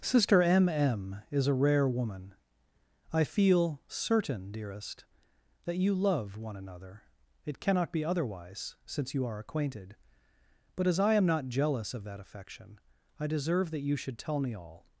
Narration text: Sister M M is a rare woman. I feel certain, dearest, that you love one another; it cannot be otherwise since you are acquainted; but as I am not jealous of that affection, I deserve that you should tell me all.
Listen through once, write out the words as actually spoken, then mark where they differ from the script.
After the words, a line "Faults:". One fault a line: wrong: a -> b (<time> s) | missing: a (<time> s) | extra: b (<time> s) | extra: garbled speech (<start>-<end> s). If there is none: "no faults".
Sister M M is a rare woman. I feel certain, dearest, that you love one another; it cannot be otherwise since you are acquainted; but as I am not jealous of that affection, I deserve that you should tell me all.
Faults:
no faults